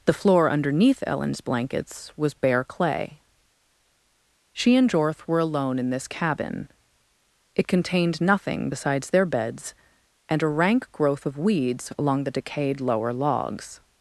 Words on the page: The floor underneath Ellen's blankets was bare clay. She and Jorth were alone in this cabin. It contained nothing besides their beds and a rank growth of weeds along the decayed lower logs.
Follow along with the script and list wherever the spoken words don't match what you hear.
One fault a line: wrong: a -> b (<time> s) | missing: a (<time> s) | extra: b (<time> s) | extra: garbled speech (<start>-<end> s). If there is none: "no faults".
no faults